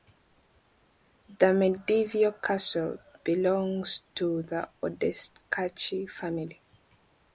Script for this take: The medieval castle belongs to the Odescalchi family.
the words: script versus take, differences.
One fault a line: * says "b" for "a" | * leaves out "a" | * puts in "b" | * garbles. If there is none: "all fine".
all fine